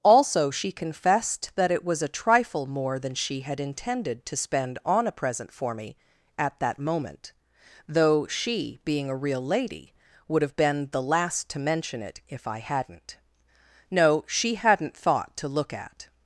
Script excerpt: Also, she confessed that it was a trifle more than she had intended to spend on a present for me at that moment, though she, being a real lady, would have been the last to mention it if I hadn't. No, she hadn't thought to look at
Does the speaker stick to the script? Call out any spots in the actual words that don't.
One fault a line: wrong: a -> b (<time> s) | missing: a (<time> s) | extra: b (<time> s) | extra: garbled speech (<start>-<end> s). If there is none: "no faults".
no faults